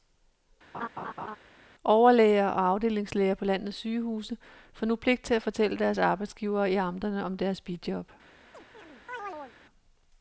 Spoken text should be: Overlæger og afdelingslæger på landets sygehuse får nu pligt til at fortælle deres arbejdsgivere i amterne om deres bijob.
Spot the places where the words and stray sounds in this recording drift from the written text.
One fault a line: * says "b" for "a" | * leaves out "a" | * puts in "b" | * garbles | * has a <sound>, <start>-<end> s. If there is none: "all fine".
* has a laugh, 0.7-1.4 s
* has a chirp, 8.5-9.6 s